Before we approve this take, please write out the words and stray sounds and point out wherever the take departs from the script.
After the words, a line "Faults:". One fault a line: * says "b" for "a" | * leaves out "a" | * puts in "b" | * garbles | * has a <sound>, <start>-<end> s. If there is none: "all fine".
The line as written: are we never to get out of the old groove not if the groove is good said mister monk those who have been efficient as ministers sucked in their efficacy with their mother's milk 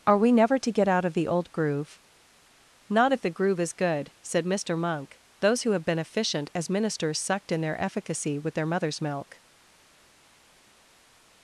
are we never to get out of the old groove not if the groove is good said mister monk those who have been efficient as ministers sucked in their efficacy with their mother's milk
Faults:
all fine